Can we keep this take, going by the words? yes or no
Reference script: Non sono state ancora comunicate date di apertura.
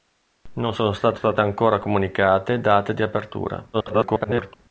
no